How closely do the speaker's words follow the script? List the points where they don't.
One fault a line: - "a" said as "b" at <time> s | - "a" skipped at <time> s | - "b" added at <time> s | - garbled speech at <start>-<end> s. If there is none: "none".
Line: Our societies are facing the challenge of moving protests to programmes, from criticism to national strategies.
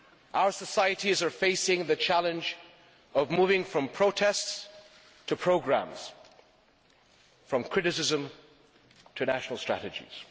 - "from" added at 3.6 s